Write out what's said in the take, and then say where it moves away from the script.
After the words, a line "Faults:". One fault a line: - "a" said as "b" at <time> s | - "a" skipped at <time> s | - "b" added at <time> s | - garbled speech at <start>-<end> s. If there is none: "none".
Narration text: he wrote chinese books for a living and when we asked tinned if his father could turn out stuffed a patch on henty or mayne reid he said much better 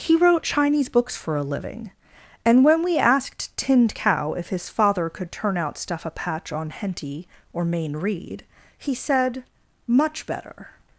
he wrote chinese books for a living and when we asked tinned cow if his father could turn out stuff a patch on henty or mayne reid he said much better
Faults:
- "cow" added at 3.9 s
- "stuffed" said as "stuff" at 5.8 s